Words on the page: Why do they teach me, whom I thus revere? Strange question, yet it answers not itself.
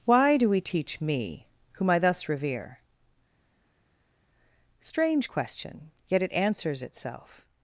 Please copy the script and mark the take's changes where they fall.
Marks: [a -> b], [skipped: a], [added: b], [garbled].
Why do [they -> we] teach me, whom I thus revere? Strange question, yet it answers [skipped: not] itself.